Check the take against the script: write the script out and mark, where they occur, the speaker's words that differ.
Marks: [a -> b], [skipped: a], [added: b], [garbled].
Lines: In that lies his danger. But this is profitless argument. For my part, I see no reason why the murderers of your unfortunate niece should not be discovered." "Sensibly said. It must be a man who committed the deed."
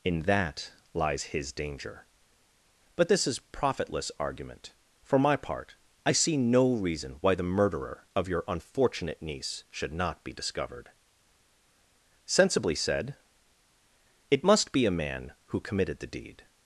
In that lies his danger. But this is profitless argument. For my part, I see no reason why the [murderers -> murderer] of your unfortunate niece should not be discovered." "Sensibly said. It must be a man who committed the deed."